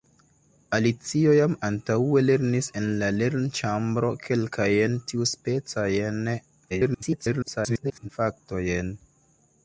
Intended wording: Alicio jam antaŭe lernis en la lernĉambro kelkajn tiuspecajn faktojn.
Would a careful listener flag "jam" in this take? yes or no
no